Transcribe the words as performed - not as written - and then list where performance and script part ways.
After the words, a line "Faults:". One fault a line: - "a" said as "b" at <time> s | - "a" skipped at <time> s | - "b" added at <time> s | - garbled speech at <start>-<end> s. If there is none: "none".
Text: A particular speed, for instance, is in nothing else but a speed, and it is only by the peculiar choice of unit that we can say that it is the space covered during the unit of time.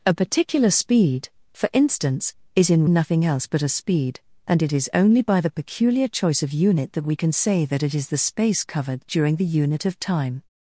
A particular speed, for instance, is in nothing else but a speed, and it is only by the peculiar choice of unit that we can say that it is the space covered during the unit of time.
Faults:
none